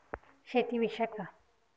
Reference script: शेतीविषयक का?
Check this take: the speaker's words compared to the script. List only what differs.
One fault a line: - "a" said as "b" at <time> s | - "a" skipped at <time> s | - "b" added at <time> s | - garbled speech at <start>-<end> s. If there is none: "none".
none